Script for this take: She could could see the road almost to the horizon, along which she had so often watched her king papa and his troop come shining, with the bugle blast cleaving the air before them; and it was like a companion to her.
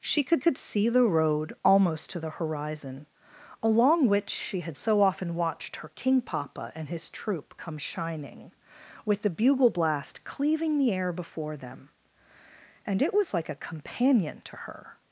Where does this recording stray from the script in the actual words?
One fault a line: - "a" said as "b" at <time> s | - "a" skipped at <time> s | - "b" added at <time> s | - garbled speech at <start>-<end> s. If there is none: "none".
none